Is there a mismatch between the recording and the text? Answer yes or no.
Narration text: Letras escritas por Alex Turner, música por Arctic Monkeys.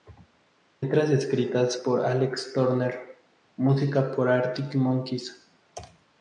no